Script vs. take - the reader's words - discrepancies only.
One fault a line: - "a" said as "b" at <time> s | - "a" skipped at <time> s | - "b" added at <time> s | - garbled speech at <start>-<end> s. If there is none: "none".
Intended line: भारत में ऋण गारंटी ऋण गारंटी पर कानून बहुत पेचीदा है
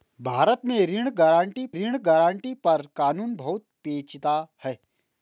none